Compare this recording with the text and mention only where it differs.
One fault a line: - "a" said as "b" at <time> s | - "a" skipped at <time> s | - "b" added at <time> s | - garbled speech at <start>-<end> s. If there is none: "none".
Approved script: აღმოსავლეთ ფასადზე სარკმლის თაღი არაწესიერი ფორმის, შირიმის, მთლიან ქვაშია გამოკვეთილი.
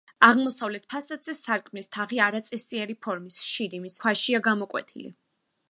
- "მთლიან" skipped at 4.0 s